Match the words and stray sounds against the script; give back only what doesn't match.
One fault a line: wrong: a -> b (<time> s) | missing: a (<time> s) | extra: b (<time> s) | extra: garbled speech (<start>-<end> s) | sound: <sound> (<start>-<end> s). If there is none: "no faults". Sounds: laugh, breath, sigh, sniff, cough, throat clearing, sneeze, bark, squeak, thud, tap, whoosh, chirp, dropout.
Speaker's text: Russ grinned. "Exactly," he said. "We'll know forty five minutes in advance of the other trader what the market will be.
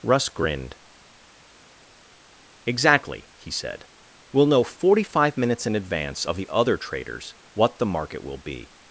wrong: trader -> traders (6.8 s)